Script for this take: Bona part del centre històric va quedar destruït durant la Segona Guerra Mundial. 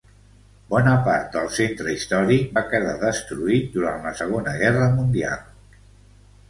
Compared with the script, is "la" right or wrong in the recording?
right